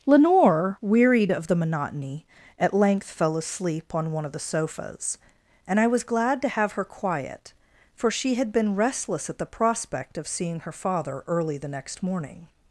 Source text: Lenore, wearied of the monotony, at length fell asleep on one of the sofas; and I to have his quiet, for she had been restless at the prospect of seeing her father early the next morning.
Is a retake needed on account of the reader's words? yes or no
yes